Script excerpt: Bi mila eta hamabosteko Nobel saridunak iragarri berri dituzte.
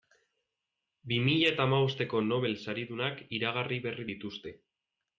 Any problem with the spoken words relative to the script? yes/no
no